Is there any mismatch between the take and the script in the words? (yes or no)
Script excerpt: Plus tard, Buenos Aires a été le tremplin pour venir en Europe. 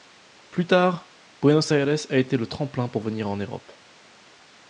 no